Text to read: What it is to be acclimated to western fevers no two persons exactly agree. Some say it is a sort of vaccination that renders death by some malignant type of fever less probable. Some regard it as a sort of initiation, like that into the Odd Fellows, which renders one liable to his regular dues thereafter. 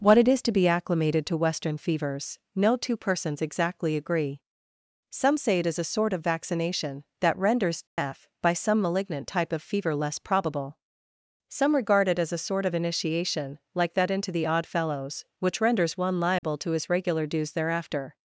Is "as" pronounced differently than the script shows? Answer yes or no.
no